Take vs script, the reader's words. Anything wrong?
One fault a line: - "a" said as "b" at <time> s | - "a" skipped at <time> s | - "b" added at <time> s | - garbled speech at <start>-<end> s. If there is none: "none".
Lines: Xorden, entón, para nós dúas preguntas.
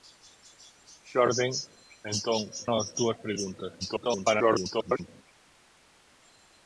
- "para" skipped at 2.4 s
- garbled speech at 3.8-5.1 s